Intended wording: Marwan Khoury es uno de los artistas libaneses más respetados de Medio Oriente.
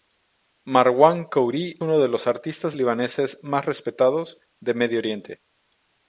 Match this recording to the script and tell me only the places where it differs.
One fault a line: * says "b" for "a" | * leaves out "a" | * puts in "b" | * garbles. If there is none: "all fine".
* leaves out "es"